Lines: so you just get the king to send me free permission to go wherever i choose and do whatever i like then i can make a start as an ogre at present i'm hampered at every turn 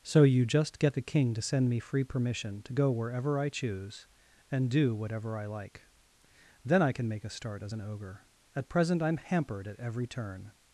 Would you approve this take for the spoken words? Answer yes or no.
yes